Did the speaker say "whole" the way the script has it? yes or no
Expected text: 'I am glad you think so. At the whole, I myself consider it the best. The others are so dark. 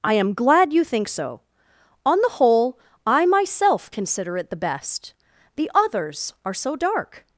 yes